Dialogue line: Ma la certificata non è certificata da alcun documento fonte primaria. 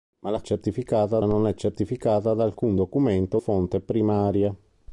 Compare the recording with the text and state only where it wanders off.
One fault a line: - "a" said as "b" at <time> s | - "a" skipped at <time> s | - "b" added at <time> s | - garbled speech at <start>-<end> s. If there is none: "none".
none